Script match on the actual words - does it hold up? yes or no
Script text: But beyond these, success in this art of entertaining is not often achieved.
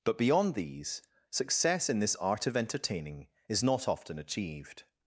yes